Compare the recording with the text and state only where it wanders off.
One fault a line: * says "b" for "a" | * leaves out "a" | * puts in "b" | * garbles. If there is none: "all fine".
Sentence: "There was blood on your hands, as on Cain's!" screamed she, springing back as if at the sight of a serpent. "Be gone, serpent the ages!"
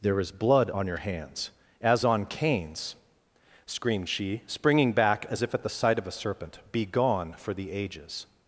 * says "is" for "was"
* says "for" for "serpent"